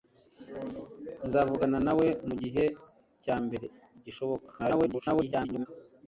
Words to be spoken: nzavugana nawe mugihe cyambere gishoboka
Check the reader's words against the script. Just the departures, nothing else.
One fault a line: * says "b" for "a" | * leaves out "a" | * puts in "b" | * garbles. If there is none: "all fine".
* garbles